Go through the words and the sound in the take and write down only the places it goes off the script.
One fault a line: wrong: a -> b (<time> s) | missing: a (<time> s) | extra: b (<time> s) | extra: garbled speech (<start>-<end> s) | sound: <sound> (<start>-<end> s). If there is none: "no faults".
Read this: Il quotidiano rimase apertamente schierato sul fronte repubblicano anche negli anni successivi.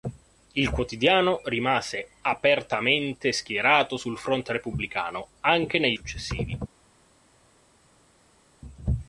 missing: anni (6.0 s)